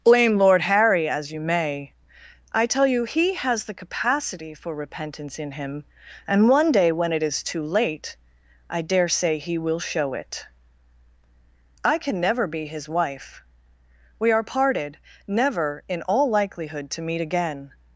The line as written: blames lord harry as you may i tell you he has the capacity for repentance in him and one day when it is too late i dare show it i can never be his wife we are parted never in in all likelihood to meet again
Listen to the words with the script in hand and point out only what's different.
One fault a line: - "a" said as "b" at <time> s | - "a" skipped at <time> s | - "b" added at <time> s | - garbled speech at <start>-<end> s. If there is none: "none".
- "blames" said as "blame" at 0.0 s
- "say he will" added at 9.1 s
- "in" skipped at 16.0 s